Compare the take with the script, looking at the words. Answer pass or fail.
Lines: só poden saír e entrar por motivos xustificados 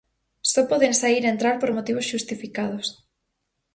pass